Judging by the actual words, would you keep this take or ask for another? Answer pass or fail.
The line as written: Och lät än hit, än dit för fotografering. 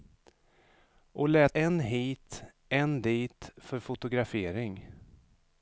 pass